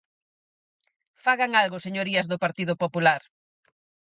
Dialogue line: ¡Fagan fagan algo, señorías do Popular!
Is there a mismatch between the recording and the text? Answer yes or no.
yes